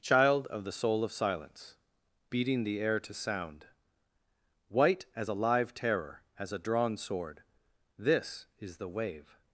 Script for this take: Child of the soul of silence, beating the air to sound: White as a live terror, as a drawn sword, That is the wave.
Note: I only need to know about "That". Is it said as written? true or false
false